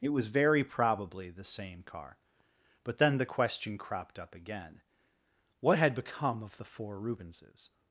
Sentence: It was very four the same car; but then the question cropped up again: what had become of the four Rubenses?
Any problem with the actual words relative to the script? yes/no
yes